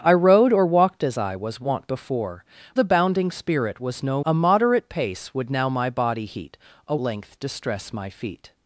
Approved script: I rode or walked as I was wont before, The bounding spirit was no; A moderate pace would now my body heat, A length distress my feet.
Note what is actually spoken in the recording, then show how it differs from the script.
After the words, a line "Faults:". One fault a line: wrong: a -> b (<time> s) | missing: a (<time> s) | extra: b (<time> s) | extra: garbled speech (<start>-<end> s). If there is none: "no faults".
I rode or walked as I was wont before, The bounding spirit was no; A moderate pace would now my body heat, A length distress my feet.
Faults:
no faults